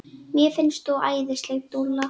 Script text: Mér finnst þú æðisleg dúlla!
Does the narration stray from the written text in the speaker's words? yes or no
no